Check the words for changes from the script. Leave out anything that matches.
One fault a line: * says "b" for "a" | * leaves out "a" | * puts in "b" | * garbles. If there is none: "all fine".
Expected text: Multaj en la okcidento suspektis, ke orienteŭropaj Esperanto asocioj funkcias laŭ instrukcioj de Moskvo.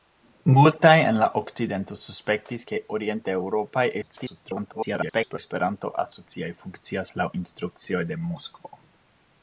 * garbles